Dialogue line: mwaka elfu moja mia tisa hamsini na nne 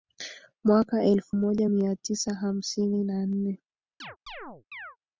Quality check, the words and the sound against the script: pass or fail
fail